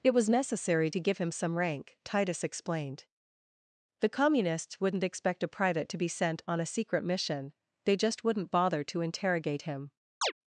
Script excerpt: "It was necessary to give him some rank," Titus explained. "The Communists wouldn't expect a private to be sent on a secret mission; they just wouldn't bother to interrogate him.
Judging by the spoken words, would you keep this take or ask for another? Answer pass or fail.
pass